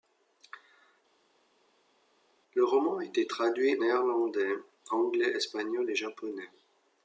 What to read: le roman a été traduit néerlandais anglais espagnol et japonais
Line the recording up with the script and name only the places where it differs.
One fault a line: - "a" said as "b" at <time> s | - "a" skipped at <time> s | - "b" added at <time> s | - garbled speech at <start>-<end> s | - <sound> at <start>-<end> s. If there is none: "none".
none